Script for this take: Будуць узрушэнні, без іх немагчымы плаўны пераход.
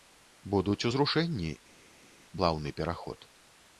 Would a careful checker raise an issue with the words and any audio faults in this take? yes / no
yes